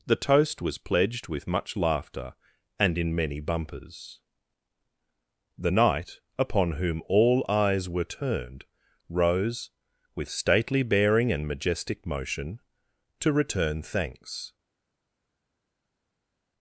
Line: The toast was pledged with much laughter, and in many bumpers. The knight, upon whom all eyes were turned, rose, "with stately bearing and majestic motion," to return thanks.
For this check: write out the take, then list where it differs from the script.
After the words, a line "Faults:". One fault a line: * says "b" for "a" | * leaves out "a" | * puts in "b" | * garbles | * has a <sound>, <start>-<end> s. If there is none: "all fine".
The toast was pledged with much laughter, and in many bumpers. The knight, upon whom all eyes were turned, rose, "with stately bearing and majestic motion," to return thanks.
Faults:
all fine